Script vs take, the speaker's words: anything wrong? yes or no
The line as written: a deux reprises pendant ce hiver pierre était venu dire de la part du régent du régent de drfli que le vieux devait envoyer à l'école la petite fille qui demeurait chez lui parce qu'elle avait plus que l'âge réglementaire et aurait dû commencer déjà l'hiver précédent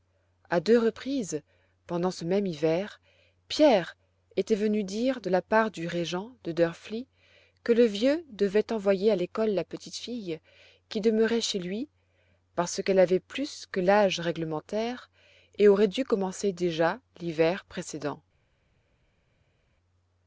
yes